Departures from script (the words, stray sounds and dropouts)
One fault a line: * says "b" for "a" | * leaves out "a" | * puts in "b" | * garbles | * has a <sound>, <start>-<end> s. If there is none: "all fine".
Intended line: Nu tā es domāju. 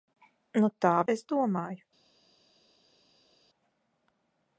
all fine